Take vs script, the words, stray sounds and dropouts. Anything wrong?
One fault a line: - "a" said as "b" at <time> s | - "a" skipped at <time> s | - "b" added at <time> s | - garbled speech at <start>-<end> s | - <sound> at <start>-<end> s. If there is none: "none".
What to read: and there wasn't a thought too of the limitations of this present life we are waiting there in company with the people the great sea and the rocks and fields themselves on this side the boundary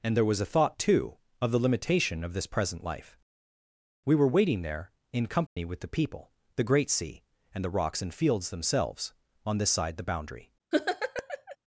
- "wasn't" said as "was" at 0.2 s
- "limitations" said as "limitation" at 1.6 s
- "are" said as "were" at 4.2 s
- dropout at 5.5-5.6 s
- laugh at 10.7-11.6 s